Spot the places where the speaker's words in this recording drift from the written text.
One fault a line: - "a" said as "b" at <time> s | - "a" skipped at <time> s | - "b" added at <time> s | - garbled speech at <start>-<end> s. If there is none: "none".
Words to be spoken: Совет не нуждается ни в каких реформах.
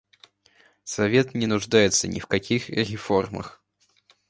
none